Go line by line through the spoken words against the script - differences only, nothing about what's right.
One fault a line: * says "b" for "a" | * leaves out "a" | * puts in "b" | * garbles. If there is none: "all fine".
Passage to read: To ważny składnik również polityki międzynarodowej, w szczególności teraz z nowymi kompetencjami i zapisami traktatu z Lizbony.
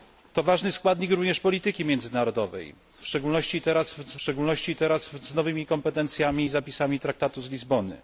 * puts in "szczególności teraz z"